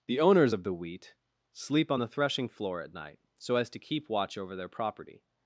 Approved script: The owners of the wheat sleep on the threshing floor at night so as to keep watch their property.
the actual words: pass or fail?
fail